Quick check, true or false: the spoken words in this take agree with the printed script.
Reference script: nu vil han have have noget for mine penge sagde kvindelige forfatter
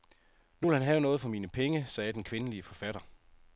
false